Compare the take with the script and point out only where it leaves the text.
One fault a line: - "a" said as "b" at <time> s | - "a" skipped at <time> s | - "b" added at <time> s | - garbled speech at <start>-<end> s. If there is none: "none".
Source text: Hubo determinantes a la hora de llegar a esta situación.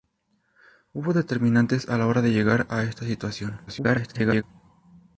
- garbled speech at 3.7-4.4 s